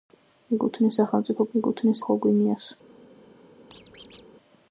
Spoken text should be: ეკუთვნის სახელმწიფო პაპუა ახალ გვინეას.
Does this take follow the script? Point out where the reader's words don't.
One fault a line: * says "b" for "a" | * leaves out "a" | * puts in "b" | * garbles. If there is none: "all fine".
* says "ეკუთვნის" for "პაპუა"